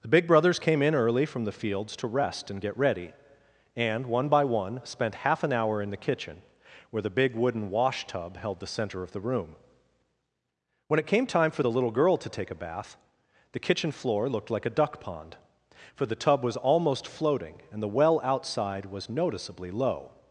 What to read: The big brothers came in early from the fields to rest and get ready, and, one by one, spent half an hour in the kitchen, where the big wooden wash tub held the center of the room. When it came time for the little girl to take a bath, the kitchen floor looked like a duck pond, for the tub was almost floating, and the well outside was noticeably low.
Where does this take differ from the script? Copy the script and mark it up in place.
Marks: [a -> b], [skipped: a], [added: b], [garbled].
The big brothers came in early from the fields to rest and get ready, and, one by one, spent half an hour in the kitchen, where the big wooden wash tub held the center of the room. When it came time for the little girl to take a bath, the kitchen floor looked like a duck pond, for the tub was almost floating, and the well outside was noticeably low.